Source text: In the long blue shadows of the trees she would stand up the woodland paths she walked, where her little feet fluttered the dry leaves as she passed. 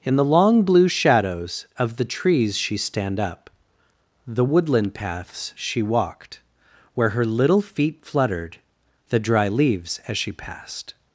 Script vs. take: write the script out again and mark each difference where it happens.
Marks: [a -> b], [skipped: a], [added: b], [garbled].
In the long blue shadows of the trees she [skipped: would] stand up the woodland paths she walked, where her little feet fluttered the dry leaves as she passed.